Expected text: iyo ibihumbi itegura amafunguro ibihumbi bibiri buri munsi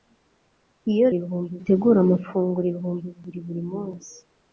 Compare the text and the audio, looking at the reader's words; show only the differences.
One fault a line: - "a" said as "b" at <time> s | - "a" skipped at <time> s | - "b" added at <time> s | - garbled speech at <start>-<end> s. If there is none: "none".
none